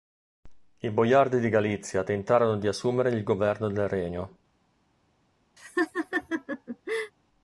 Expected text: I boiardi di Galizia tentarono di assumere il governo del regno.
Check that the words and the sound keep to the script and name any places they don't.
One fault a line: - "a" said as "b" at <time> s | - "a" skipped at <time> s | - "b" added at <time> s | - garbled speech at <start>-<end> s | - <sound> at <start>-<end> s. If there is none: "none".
- laugh at 5.6-7.1 s